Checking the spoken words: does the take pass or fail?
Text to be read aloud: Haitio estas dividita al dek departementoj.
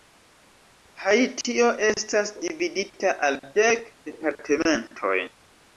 pass